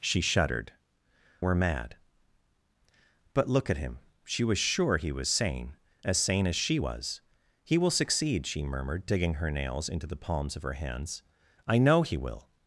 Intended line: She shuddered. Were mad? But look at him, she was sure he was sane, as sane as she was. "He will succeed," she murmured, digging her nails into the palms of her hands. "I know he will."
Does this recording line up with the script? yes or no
yes